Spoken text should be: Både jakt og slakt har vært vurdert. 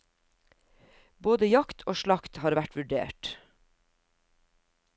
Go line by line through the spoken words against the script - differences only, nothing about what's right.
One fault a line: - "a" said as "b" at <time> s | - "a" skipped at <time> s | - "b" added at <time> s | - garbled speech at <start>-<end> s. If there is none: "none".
none